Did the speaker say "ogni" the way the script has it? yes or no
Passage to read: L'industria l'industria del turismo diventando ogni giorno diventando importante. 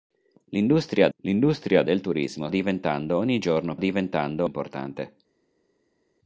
yes